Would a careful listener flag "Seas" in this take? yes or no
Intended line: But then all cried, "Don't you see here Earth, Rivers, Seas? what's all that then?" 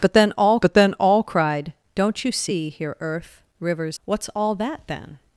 yes